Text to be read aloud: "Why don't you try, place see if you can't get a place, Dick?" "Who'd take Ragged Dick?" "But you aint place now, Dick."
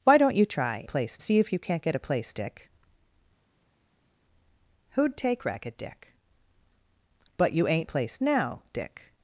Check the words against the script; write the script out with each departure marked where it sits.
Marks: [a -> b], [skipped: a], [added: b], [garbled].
"Why don't you try, place see if you can't get a place, Dick?" "Who'd take Ragged Dick?" "But you aint place now, Dick."